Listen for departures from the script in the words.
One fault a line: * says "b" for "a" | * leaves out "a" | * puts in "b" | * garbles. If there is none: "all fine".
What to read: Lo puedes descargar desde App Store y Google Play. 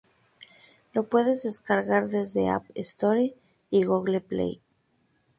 all fine